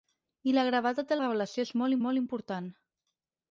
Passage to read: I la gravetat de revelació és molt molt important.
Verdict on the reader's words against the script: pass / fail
pass